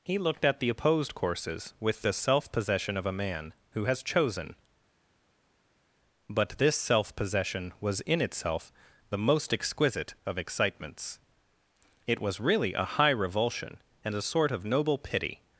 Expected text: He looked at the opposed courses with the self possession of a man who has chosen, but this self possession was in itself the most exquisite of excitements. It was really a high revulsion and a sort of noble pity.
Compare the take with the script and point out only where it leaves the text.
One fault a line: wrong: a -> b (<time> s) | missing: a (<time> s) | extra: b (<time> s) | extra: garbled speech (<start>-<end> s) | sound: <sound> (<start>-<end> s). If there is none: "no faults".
no faults